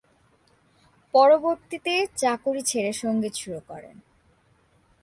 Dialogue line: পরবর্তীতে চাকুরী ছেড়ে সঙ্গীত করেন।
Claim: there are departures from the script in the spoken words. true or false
true